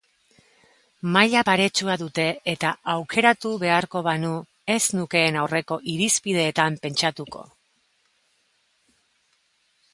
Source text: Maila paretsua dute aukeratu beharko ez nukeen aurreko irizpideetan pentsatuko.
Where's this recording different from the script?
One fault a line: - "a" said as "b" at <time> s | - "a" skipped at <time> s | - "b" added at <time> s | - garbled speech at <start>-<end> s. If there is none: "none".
- "eta" added at 2.5 s
- "banu" added at 4.1 s